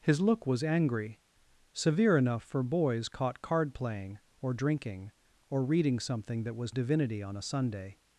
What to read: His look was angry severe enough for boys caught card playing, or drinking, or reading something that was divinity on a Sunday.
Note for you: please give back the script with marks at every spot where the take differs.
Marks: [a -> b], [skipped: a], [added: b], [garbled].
His look was angry severe enough for boys caught card playing, or drinking, or reading something that was divinity on a Sunday.